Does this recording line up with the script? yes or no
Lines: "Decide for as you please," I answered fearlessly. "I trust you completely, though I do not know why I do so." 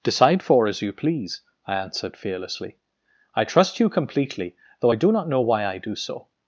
yes